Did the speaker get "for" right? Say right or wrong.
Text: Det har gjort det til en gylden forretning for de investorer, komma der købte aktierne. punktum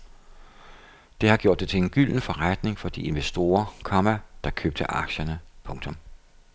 right